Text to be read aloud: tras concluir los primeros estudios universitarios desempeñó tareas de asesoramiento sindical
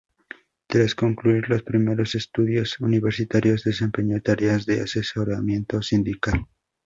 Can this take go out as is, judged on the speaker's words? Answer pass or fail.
pass